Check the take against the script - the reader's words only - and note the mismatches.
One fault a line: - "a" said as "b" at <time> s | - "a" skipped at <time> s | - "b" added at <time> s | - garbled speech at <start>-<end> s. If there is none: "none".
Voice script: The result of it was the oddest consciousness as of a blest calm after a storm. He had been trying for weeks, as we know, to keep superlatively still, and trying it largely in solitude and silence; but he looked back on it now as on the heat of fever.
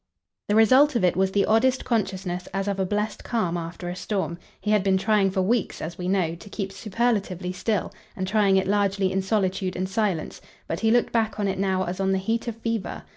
none